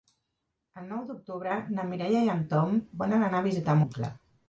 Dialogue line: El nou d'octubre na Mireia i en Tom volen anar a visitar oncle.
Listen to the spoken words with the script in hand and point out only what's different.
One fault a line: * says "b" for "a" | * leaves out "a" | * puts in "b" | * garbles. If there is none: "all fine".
all fine